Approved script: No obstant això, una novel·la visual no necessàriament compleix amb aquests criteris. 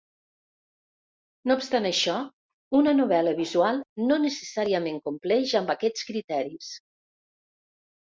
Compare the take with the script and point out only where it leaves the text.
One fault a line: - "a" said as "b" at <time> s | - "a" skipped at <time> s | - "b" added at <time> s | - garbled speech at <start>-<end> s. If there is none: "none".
none